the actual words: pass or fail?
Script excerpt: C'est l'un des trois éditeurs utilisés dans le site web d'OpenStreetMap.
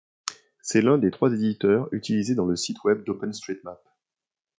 pass